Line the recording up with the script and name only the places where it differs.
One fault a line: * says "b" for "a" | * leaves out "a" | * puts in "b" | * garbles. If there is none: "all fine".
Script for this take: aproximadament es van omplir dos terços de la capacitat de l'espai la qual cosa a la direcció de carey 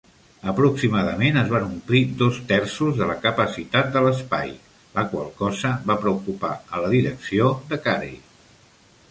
* puts in "va preocupar"